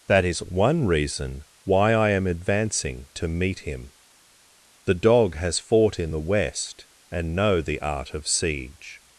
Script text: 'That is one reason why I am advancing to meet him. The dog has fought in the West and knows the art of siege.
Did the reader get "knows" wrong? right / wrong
wrong